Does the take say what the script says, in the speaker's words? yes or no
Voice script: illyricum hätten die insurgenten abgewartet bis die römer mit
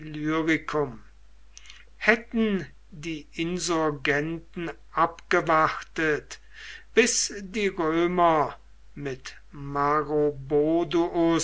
yes